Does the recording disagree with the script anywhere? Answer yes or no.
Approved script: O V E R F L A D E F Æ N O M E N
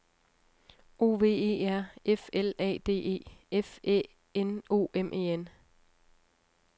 no